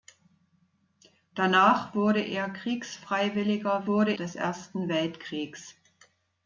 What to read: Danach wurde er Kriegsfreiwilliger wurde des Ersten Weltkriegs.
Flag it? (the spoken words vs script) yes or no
no